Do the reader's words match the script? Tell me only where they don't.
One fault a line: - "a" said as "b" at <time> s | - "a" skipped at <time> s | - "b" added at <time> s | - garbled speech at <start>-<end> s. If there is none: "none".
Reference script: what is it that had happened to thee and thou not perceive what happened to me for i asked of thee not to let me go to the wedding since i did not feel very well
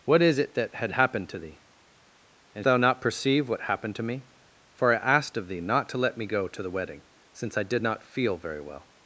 none